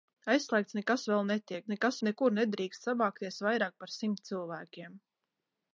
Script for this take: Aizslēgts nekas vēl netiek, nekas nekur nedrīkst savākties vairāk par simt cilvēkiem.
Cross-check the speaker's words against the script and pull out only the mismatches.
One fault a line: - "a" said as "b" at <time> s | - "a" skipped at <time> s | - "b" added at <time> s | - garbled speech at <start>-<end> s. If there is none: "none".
none